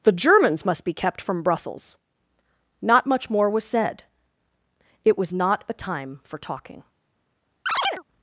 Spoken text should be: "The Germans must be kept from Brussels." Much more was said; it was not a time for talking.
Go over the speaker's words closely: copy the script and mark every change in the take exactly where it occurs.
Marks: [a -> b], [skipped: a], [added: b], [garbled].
"The Germans must be kept from Brussels." [added: Not] Much more was said; it was not a time for talking.